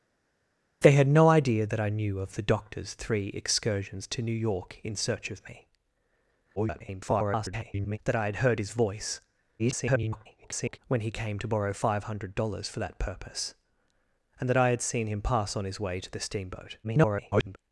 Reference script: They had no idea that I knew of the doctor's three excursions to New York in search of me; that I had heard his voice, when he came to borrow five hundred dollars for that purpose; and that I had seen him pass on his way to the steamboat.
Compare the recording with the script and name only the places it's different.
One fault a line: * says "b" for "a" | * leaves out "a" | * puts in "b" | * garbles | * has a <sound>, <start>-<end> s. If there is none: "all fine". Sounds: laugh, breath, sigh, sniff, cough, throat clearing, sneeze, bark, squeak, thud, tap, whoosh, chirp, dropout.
* garbles
* garbles
* garbles